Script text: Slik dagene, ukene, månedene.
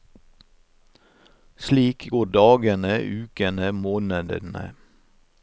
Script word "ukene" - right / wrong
right